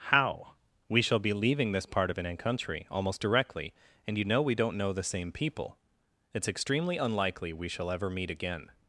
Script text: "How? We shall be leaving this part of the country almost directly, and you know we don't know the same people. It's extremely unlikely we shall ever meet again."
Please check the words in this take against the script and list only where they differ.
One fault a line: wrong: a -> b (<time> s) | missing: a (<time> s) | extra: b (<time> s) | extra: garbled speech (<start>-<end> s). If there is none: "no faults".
wrong: the -> an (2.2 s)